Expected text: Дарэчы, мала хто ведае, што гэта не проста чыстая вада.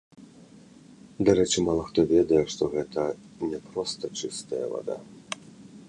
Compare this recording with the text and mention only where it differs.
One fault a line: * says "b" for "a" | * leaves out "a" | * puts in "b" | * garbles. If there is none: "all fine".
all fine